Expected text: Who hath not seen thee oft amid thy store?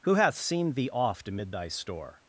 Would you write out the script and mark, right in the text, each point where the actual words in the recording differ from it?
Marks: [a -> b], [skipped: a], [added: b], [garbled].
Who hath [skipped: not] seen thee oft amid thy store?